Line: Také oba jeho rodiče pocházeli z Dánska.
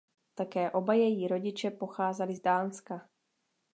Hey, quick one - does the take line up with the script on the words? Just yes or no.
no